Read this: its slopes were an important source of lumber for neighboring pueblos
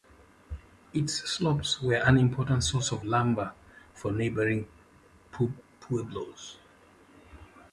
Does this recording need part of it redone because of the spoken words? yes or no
no